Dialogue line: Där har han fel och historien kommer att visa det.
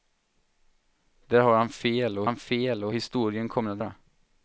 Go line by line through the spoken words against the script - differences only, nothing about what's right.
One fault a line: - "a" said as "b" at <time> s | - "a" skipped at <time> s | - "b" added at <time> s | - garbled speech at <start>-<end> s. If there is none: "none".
- "han fel och" added at 2.2 s
- "visa" skipped at 3.8 s